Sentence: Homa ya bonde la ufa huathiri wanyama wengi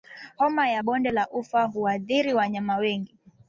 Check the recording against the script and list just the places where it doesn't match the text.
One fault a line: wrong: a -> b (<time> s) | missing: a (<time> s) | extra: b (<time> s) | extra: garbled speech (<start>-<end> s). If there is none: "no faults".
no faults